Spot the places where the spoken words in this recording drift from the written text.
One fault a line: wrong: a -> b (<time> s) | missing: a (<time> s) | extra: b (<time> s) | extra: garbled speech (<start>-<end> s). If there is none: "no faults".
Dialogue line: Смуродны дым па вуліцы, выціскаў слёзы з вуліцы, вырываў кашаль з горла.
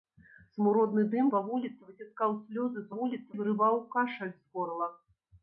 no faults